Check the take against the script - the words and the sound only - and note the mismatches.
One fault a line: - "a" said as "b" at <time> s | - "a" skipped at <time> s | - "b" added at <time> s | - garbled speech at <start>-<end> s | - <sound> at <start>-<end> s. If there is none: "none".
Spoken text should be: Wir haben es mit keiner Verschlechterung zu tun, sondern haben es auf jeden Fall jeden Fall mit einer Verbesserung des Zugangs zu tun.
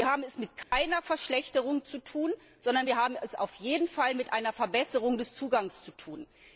- dropout at 0.6-0.7 s
- "wir" added at 2.8 s
- "jeden Fall" skipped at 4.1 s